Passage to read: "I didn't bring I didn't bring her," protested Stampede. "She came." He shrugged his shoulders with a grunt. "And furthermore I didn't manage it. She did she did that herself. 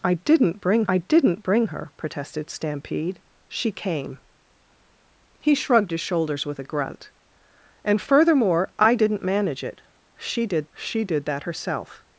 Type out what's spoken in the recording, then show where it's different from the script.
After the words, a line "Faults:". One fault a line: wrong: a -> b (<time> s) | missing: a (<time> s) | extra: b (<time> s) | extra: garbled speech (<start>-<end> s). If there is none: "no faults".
"I didn't bring I didn't bring her," protested Stampede. "She came." He shrugged his shoulders with a grunt. "And furthermore I didn't manage it. She did she did that herself.
Faults:
no faults